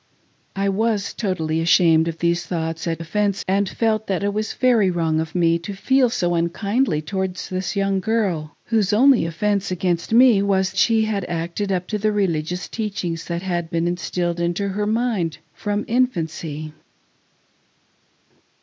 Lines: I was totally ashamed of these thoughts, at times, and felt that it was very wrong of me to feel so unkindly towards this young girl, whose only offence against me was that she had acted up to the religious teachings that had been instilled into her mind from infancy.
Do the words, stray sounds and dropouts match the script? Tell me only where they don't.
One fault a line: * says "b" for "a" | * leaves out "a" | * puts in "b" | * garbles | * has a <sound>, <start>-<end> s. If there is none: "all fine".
* says "offence" for "times"
* leaves out "that"